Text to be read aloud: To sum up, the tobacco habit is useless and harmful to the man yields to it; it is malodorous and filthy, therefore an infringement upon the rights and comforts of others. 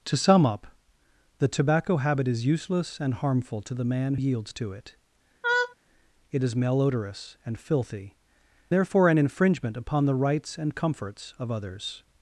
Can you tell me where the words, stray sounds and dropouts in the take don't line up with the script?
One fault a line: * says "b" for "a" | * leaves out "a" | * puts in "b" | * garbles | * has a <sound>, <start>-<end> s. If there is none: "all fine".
* has a laugh, 5.4-5.8 s